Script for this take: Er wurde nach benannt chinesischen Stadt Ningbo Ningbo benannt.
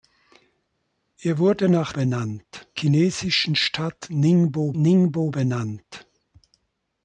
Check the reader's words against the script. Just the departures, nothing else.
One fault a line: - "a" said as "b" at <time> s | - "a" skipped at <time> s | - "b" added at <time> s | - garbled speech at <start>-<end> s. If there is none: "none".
none